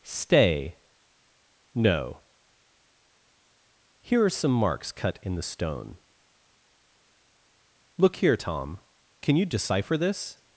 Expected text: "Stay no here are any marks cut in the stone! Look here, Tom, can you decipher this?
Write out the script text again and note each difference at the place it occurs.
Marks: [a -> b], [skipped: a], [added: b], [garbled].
"Stay no here are [any -> some] marks cut in the stone! Look here, Tom, can you decipher this?